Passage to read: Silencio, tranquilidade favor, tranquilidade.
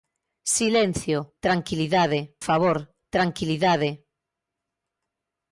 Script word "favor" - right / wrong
right